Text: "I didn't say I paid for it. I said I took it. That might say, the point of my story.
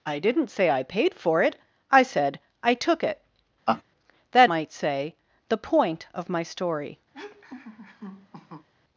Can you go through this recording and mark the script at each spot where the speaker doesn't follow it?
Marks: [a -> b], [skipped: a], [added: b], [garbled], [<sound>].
"I didn't say I paid for it. I said I took it. [laugh] That might say, the point of my story. [laugh]